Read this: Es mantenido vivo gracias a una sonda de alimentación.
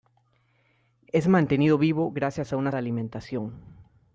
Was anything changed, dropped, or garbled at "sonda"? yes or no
yes